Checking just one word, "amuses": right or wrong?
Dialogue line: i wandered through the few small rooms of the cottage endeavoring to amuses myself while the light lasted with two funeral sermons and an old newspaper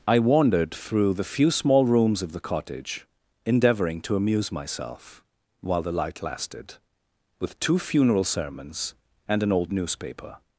wrong